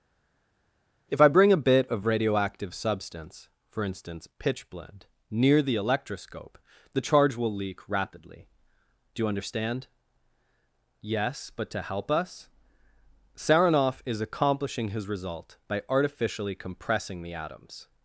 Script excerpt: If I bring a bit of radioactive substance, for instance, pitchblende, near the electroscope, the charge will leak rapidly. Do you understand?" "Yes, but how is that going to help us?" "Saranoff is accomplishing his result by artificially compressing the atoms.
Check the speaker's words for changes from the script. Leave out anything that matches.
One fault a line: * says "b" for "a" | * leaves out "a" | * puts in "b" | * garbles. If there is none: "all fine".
* leaves out "how is that going"